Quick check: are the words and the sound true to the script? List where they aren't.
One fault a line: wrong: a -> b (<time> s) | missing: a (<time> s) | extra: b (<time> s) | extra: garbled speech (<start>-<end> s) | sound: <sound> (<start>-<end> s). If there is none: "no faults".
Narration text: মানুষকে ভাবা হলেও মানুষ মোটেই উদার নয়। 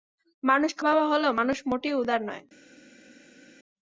no faults